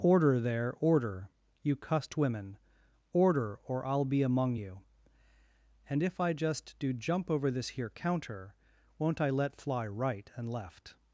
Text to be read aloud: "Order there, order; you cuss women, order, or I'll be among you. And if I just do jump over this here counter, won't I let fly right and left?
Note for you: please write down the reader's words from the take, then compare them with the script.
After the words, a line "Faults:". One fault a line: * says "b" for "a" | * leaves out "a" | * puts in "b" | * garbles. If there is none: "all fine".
"Order there, order; you cussed women, order, or I'll be among you. And if I just do jump over this here counter, won't I let fly right and left?
Faults:
* says "cussed" for "cuss"